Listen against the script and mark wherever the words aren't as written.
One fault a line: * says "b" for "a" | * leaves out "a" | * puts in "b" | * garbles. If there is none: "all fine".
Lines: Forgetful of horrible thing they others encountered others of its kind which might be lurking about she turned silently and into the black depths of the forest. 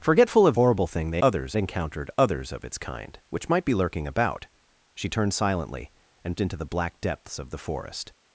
all fine